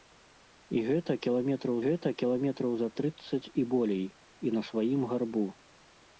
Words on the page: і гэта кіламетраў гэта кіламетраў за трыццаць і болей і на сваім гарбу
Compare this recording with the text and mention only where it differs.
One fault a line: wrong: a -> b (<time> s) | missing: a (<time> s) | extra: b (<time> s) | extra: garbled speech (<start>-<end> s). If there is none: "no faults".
no faults